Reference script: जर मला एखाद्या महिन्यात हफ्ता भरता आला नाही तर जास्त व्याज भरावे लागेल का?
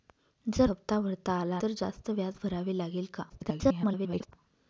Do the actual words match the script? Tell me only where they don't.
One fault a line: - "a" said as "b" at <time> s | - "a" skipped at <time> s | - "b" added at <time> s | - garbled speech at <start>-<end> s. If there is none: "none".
- "मला एखाद्या महिन्यात" skipped at 0.7 s
- "नाही" skipped at 1.6 s
- garbled speech at 3.3-4.3 s